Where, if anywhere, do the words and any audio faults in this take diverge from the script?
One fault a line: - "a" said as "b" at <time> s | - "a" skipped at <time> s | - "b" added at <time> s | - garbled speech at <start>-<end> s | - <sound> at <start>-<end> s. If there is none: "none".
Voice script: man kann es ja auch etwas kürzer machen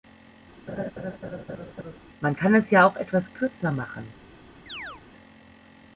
- laugh at 0.7-2.0 s
- chirp at 4.7-5.0 s